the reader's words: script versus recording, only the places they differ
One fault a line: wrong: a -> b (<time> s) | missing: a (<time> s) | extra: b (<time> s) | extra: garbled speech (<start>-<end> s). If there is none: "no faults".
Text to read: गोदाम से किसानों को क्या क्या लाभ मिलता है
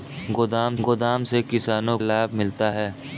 extra: गोदाम (0.8 s)
missing: को क्या क्या (2.0 s)